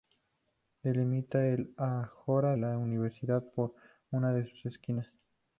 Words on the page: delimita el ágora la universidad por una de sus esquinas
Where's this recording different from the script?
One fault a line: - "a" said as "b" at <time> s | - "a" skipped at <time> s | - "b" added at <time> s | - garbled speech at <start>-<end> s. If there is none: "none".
none